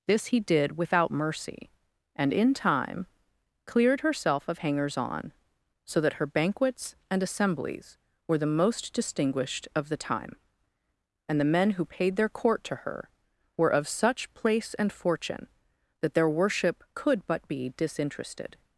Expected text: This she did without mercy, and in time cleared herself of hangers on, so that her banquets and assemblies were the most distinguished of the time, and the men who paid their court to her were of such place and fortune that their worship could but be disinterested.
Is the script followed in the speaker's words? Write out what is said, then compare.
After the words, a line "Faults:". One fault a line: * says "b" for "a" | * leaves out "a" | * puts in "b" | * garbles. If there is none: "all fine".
This he did without mercy, and in time cleared herself of hangers on, so that her banquets and assemblies were the most distinguished of the time, and the men who paid their court to her were of such place and fortune that their worship could but be disinterested.
Faults:
* says "he" for "she"